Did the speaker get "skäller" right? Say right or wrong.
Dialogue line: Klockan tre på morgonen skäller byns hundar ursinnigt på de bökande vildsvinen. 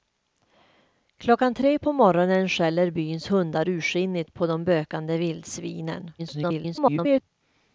right